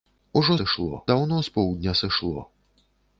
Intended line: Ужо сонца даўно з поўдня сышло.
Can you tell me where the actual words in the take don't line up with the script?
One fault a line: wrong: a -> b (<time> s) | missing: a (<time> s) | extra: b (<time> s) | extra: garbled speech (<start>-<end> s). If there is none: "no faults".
wrong: сонца -> сышло (0.6 s)